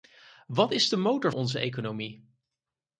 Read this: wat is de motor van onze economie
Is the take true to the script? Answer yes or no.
no